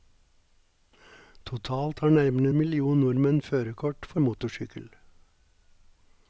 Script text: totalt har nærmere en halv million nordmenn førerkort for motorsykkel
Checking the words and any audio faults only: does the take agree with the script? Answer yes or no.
no